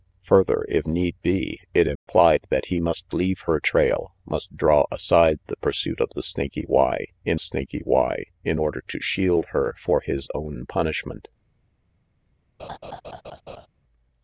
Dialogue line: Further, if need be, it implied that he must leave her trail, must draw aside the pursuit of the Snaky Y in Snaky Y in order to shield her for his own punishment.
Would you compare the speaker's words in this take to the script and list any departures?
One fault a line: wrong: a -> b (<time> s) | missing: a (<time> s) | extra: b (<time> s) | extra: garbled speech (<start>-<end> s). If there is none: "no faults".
no faults